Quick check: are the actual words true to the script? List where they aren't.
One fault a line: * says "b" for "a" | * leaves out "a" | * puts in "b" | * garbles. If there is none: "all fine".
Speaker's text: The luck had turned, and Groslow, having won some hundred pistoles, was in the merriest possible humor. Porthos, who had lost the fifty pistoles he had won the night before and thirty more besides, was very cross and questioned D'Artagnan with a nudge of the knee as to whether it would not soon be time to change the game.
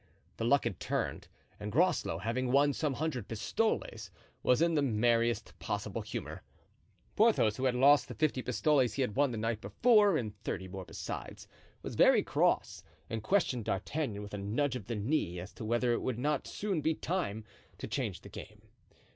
all fine